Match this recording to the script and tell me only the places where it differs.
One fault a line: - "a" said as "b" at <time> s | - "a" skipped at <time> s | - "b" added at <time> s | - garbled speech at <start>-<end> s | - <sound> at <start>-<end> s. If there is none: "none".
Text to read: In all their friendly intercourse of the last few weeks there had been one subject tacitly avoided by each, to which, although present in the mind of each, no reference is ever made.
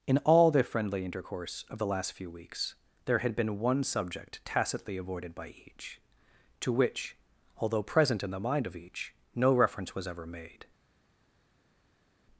- "is" said as "was" at 9.9 s